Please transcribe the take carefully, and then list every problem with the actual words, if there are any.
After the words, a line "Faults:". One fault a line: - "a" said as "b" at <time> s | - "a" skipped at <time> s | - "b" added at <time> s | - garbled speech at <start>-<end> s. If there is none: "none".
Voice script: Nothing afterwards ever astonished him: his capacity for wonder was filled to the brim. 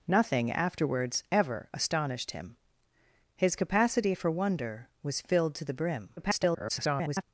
Nothing afterwards ever astonished him: his capacity for wonder was filled to the brim. [garbled]
Faults:
- garbled speech at 6.2-7.2 s